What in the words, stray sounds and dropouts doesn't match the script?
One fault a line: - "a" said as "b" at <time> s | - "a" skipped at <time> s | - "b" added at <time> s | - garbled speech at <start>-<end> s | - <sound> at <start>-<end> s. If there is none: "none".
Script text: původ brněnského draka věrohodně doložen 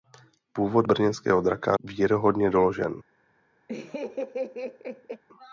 - laugh at 3.7-5.2 s